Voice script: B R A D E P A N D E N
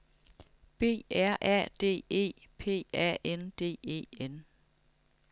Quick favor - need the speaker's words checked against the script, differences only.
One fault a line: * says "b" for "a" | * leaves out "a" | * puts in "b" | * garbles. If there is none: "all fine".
all fine